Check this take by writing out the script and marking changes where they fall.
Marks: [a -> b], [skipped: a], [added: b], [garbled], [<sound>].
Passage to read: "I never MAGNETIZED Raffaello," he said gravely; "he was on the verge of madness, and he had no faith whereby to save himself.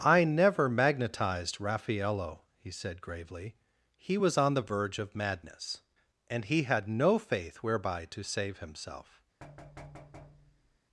"I never MAGNETIZED Raffaello," he said gravely; "he was on the verge of madness, and he had no faith whereby to save himself. [thud]